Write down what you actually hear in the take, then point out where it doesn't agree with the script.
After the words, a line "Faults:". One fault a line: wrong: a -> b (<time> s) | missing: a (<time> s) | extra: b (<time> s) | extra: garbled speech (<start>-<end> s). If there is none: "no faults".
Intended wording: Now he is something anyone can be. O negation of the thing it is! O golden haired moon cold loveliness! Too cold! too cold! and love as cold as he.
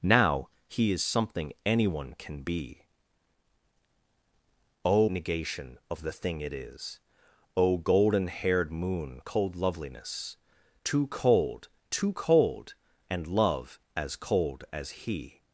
Now he is something anyone can be. O negation of the thing it is! O golden haired moon cold loveliness! Too cold! too cold! and love as cold as he.
Faults:
no faults